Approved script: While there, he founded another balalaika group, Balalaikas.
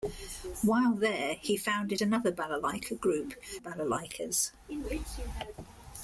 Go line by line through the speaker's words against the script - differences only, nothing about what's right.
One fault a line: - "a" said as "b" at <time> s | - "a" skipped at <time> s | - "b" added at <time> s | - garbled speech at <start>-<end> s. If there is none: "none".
none